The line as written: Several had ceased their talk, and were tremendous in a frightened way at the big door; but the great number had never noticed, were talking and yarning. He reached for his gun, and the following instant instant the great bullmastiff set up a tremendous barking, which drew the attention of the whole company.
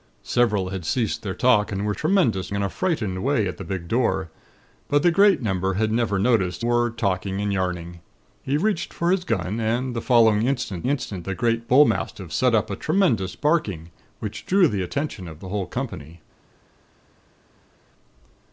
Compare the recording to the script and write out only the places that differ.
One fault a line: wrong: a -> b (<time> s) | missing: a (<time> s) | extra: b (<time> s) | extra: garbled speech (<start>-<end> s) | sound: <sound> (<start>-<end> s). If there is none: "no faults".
no faults